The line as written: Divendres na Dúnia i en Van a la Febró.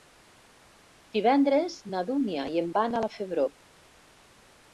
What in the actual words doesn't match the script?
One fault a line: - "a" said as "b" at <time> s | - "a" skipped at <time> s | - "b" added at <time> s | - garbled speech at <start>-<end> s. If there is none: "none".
none